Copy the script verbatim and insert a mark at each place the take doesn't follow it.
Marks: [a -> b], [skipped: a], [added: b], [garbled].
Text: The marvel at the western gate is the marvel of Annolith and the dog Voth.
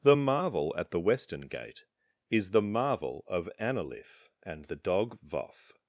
The marvel at the western gate is the marvel of Annolith and the dog Voth.